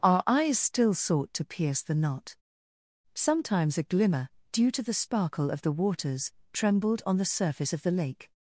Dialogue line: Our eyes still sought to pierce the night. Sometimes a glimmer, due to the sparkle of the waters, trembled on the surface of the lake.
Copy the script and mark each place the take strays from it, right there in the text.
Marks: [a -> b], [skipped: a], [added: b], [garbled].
Our eyes still sought to pierce the [night. -> knot] Sometimes a glimmer, due to the sparkle of the waters, trembled on the surface of the lake.